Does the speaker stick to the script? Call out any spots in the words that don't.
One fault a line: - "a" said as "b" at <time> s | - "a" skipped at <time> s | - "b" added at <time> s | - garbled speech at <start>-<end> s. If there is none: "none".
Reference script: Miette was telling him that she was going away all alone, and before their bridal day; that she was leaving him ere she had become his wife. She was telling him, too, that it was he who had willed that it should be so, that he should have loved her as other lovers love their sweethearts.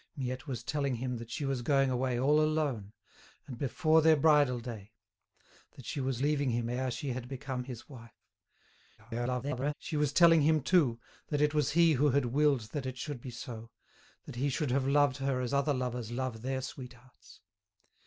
- garbled speech at 9.0-9.7 s